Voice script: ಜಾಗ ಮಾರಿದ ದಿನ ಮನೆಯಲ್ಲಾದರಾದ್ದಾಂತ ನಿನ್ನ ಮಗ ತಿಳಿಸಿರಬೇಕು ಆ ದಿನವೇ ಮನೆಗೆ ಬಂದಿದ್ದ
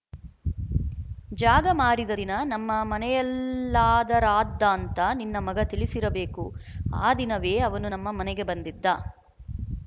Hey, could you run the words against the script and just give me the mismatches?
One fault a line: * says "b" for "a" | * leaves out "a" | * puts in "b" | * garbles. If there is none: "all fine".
* puts in "ನಮ್ಮ"
* puts in "ಅವನು ನಮ್ಮ"